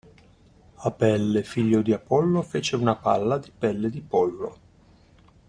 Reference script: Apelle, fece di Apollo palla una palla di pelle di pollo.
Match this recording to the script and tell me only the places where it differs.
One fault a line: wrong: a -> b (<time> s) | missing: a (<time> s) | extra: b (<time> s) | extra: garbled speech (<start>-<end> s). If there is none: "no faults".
wrong: fece -> figlio (1.4 s)
wrong: palla -> fece (2.4 s)